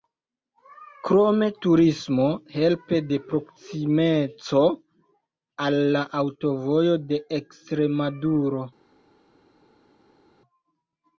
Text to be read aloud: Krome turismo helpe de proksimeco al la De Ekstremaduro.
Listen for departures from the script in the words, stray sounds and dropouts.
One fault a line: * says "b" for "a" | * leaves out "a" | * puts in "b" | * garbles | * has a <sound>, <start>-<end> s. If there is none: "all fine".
* puts in "Aŭtovojo"